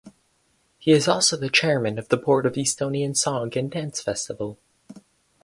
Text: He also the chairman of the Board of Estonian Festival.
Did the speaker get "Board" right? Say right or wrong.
right